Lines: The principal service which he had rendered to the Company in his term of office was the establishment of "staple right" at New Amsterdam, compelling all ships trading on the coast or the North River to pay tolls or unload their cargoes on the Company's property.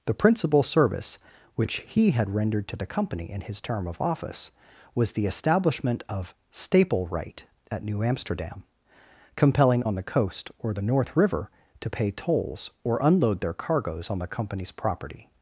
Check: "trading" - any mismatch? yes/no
yes